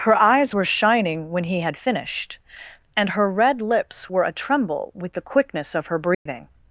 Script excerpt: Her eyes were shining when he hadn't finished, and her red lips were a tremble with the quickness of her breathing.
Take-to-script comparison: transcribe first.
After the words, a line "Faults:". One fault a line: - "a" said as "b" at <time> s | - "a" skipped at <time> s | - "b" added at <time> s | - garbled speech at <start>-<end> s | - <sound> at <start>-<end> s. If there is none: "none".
Her eyes were shining when he had finished, and her red lips were a tremble with the quickness of her breathing.
Faults:
- "hadn't" said as "had" at 1.6 s
- dropout at 6.1-6.3 s